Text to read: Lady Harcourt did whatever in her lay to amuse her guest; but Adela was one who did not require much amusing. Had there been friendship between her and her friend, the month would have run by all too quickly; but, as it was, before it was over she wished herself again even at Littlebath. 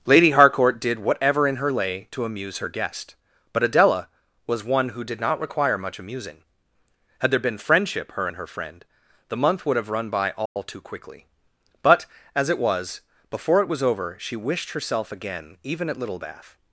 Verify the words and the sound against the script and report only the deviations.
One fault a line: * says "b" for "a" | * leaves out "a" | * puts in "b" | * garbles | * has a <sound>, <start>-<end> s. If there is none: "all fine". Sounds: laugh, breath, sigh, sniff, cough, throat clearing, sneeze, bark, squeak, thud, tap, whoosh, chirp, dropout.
* leaves out "between"
* has a dropout, 10.5-10.6 s